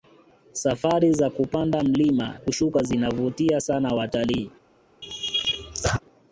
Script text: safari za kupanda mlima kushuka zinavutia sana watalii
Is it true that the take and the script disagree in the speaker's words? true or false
false